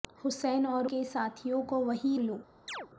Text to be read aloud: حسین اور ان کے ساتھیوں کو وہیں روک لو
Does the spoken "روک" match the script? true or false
false